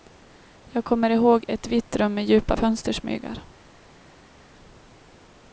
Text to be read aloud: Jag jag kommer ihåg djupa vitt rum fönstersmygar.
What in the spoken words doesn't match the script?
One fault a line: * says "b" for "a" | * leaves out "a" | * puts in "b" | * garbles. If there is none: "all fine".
* leaves out "jag"
* says "ett" for "djupa"
* puts in "med djupa"